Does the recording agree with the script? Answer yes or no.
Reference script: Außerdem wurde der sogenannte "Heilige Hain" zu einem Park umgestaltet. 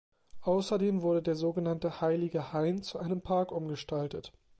yes